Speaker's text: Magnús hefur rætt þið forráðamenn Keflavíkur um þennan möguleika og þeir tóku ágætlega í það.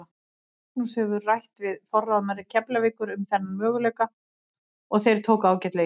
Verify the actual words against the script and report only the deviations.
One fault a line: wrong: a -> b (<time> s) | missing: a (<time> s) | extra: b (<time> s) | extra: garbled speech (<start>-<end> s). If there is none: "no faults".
wrong: þið -> við (1.6 s)